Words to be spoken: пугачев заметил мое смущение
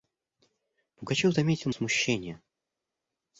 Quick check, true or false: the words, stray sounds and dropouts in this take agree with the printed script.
false